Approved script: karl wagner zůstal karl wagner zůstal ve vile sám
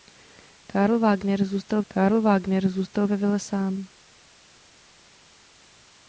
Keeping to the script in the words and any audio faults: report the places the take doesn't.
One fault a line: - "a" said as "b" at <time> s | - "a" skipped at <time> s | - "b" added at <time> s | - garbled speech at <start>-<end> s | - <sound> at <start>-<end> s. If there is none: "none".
none